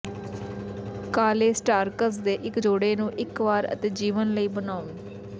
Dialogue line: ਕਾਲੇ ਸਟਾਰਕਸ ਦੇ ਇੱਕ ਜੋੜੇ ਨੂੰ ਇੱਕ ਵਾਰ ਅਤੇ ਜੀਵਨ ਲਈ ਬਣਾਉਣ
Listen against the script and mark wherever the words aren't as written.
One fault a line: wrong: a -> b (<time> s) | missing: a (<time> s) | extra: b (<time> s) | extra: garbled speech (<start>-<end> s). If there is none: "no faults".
no faults